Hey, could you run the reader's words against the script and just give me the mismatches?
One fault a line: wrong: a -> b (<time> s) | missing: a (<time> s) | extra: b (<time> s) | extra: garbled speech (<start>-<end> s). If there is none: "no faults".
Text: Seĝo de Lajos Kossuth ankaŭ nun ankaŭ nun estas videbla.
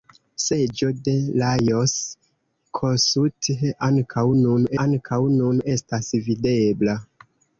no faults